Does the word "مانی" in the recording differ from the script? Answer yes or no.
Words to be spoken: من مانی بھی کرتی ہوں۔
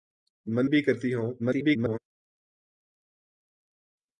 yes